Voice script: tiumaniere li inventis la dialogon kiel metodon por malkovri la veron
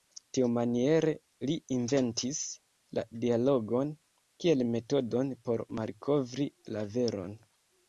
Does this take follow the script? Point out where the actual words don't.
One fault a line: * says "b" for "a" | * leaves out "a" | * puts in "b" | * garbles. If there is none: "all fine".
all fine